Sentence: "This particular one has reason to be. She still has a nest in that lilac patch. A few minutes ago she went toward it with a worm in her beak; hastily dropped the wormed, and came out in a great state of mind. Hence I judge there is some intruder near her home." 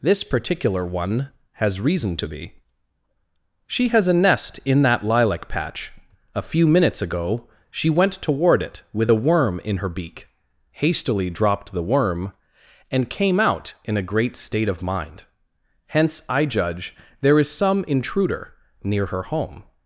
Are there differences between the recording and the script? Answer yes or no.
yes